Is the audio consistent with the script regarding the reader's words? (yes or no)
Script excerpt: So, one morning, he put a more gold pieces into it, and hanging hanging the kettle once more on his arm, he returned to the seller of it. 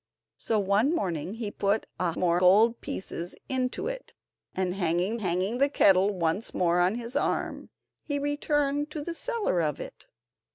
yes